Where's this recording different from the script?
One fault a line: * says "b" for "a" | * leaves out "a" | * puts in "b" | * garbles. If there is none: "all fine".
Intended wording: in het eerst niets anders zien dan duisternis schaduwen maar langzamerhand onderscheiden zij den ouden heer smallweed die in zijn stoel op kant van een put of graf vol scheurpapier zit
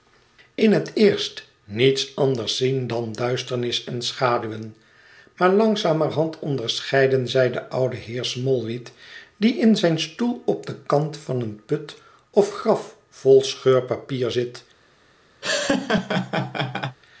* puts in "en"
* puts in "den"